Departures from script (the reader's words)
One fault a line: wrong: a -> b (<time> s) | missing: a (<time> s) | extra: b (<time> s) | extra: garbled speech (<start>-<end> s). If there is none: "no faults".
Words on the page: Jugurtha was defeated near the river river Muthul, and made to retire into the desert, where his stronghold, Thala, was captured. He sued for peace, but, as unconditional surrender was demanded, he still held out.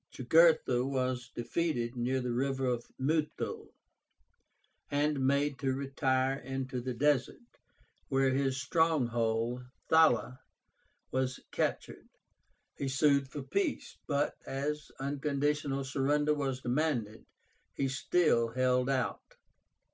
missing: river (2.8 s)